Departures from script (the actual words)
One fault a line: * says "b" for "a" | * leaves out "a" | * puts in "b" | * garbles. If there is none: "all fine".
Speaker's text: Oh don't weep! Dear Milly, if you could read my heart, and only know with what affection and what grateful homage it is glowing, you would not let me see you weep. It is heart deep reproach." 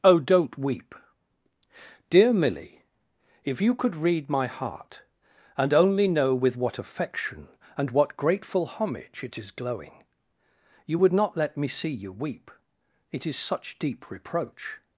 * says "such" for "heart"